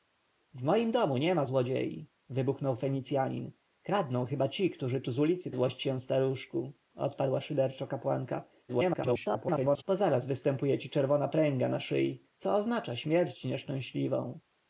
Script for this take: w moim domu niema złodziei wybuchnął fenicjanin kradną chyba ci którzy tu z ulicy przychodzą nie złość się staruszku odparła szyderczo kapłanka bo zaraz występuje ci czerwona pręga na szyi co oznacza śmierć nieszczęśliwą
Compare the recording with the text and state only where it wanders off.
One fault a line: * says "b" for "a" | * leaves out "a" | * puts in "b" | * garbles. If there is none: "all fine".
* leaves out "przychodzą nie"
* garbles